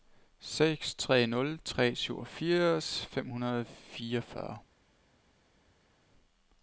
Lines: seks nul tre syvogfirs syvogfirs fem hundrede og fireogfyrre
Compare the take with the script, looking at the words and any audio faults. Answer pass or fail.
fail